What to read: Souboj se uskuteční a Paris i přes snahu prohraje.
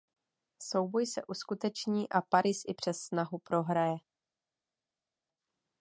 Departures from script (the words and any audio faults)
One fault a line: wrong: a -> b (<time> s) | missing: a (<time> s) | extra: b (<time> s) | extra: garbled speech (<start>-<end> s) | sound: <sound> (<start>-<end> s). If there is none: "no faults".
no faults